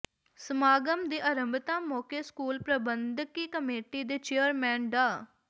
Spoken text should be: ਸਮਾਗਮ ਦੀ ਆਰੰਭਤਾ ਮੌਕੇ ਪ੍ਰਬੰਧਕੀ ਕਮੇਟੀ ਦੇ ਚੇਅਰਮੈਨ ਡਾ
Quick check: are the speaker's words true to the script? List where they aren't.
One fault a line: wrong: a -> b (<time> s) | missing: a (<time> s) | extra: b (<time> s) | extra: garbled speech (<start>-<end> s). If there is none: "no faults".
extra: ਸਕੂਲ (2.2 s)